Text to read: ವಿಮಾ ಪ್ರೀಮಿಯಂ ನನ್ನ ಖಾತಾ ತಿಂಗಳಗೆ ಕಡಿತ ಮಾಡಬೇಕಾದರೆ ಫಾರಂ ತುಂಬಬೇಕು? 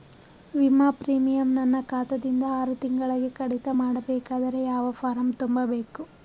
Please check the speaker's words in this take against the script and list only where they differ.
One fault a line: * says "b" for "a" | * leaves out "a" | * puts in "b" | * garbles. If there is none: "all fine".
* puts in "ದಿಂದ ಆರು"
* puts in "ಯಾವ"